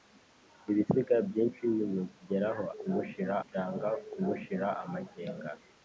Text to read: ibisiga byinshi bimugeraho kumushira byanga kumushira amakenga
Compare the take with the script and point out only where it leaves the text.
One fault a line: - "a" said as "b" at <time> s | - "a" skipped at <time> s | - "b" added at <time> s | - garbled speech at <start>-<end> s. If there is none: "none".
none